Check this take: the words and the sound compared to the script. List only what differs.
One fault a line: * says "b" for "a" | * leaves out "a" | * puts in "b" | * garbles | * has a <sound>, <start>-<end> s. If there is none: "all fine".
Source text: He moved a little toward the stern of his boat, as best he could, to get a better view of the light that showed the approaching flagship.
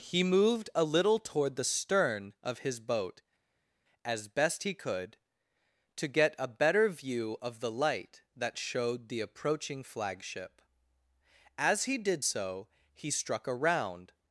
* puts in "As he did so he struck a round"